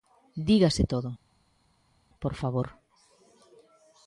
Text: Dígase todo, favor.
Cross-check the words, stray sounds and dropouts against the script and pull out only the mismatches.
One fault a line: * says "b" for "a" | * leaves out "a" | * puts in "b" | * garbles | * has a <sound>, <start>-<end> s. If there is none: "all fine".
* puts in "por"